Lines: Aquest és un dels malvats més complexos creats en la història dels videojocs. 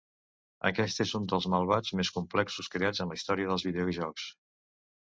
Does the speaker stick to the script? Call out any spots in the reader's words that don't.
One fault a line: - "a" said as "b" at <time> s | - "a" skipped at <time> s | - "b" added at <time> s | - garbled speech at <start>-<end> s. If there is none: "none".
none